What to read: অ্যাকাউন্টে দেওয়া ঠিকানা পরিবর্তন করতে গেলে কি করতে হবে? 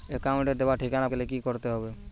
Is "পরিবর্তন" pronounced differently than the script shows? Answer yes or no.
yes